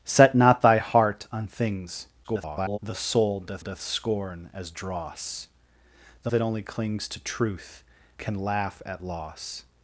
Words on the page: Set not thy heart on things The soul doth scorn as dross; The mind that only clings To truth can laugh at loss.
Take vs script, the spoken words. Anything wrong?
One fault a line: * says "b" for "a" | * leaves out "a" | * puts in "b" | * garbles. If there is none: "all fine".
* garbles
* puts in "doth"
* leaves out "mind"